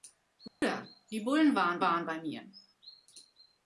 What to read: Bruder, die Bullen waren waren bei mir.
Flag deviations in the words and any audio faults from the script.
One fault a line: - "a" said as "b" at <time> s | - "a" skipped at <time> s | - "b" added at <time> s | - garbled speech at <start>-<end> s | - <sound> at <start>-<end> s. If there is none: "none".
- dropout at 0.5-0.6 s